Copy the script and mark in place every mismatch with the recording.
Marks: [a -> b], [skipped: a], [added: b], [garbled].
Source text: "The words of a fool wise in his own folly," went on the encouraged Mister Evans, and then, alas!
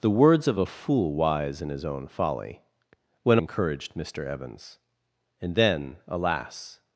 "The words of a fool wise in his own folly," went [skipped: on the] encouraged Mister Evans, and then, alas!